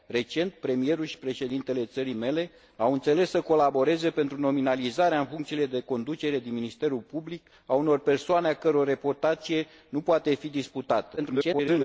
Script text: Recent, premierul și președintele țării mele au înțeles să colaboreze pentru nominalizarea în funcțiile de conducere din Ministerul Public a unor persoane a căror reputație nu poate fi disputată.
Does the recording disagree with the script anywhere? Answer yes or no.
yes